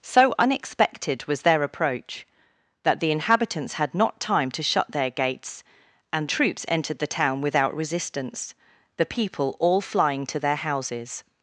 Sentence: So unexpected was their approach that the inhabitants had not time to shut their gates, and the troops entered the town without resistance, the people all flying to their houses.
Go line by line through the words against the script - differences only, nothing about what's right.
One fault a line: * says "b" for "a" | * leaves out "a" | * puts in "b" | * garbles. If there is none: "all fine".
* leaves out "the"